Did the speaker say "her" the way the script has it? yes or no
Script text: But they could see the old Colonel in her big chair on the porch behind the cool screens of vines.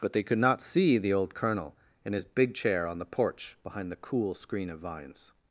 no